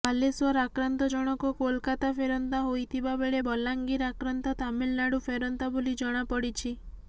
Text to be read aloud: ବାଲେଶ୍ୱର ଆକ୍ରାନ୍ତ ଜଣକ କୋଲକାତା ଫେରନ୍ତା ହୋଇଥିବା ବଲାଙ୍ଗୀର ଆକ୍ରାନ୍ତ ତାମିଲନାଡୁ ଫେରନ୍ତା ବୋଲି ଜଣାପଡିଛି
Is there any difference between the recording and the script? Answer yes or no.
yes